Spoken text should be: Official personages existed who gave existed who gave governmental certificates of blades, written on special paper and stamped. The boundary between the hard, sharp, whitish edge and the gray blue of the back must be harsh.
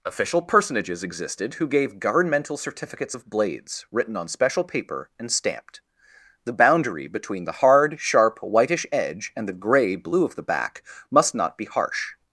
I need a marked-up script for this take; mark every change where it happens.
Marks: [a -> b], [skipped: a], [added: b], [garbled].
Official personages existed who gave [skipped: existed who gave] governmental certificates of blades, written on special paper and stamped. The boundary between the hard, sharp, whitish edge and the gray blue of the back must [added: not] be harsh.